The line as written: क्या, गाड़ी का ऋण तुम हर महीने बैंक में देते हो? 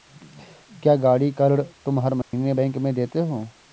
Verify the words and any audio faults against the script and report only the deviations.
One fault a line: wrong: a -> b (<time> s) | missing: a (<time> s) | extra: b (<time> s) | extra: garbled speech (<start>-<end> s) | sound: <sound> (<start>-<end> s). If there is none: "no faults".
sound: dropout (2.2-2.3 s)